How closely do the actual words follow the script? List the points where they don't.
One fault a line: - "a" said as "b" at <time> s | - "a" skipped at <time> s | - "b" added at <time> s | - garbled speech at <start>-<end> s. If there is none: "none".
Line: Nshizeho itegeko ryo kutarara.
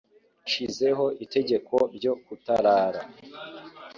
none